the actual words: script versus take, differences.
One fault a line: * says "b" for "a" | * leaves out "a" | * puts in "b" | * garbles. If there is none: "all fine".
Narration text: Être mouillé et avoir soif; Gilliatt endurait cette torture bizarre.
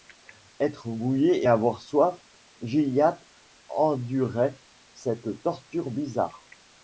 all fine